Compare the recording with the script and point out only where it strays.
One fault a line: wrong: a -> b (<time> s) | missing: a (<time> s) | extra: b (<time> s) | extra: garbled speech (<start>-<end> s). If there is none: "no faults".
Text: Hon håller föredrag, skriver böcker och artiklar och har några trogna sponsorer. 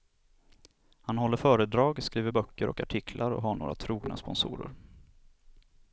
wrong: Hon -> Han (1.0 s)